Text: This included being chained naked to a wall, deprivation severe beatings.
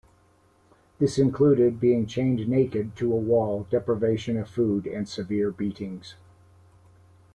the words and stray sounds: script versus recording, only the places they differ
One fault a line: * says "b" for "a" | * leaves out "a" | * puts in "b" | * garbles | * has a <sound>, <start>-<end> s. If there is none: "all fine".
* puts in "of food and"